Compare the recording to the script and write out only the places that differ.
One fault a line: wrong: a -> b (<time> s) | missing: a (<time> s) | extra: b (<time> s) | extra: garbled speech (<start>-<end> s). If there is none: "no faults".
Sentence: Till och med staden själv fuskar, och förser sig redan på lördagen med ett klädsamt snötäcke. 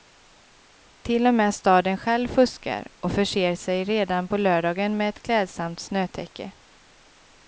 no faults